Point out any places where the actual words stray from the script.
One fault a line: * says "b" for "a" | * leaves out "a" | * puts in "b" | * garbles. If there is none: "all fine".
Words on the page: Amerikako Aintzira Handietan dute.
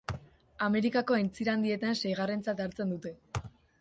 * puts in "seigarrentzat hartzen"